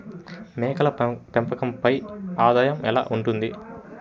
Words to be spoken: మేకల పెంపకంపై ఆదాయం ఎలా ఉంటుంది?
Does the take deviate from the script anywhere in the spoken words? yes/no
no